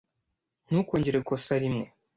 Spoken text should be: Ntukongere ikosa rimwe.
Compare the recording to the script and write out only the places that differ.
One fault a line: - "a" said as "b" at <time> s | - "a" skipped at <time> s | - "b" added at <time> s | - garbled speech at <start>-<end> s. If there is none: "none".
none